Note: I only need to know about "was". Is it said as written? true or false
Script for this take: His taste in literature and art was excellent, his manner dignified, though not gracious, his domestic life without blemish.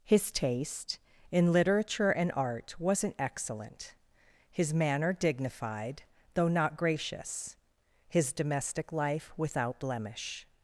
false